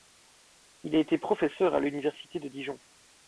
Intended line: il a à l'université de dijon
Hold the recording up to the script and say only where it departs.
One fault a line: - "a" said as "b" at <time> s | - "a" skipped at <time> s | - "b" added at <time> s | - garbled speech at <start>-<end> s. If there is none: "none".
- "été professeur" added at 1.0 s